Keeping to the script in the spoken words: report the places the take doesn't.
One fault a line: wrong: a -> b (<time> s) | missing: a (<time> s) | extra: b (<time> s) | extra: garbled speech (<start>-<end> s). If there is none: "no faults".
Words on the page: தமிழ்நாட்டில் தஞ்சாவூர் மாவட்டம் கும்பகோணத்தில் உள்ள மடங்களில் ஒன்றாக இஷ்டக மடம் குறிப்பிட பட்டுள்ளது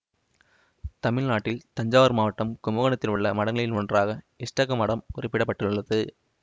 no faults